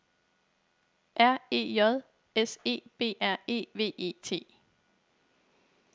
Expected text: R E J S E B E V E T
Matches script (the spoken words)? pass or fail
fail